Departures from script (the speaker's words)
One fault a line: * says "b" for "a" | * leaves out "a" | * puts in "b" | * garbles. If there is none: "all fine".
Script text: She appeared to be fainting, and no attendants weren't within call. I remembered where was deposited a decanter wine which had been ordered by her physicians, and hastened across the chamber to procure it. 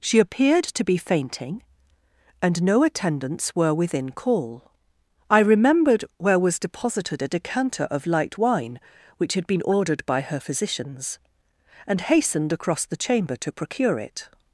* says "were" for "weren't"
* puts in "of light"